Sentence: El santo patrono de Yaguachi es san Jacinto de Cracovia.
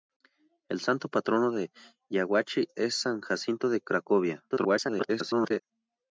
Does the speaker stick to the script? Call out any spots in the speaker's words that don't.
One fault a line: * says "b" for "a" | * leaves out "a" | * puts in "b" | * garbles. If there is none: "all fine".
* garbles